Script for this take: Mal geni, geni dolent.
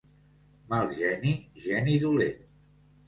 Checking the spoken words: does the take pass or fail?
pass